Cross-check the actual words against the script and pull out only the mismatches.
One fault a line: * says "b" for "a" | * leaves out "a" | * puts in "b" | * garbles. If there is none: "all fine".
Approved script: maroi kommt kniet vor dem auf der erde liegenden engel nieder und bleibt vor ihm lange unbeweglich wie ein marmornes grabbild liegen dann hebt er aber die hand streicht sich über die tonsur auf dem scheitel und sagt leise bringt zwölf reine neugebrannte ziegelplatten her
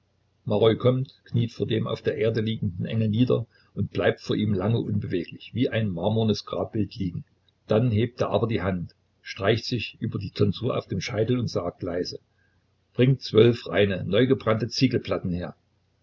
all fine